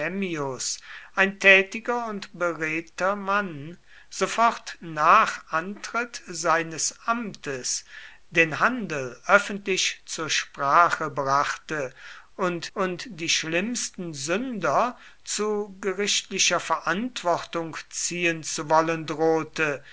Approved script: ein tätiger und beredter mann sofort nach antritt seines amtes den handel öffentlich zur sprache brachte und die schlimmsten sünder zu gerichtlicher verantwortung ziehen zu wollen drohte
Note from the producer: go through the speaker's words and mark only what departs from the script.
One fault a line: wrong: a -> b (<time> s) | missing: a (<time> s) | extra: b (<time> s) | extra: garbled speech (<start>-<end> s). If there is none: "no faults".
extra: und (12.7 s)